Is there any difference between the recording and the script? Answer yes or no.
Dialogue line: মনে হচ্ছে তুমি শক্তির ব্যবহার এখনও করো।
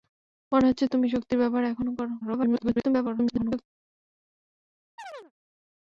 yes